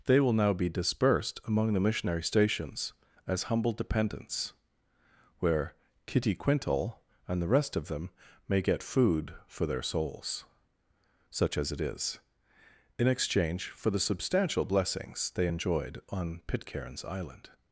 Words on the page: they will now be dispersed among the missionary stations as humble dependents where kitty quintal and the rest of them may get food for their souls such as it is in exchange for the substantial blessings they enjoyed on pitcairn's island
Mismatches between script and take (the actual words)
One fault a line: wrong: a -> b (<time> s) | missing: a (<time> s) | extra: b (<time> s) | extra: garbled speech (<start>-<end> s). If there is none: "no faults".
no faults